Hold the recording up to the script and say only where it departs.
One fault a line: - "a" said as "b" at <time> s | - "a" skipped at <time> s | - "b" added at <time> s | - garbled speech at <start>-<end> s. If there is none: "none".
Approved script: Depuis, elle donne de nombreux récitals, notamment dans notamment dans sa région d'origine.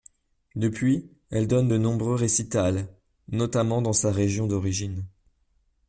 - "notamment dans" skipped at 3.9 s